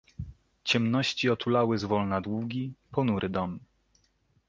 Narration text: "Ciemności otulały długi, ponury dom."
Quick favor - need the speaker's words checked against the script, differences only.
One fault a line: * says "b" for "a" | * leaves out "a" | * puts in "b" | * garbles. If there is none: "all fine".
* puts in "zwolna"